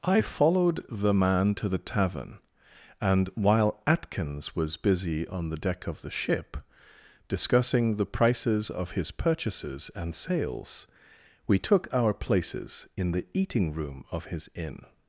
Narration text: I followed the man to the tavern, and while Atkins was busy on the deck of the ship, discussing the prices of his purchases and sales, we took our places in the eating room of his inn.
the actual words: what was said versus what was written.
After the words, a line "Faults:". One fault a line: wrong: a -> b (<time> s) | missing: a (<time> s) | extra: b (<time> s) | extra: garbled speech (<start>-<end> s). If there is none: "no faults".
I followed the man to the tavern, and while Atkins was busy on the deck of the ship, discussing the prices of his purchases and sales, we took our places in the eating room of his inn.
Faults:
no faults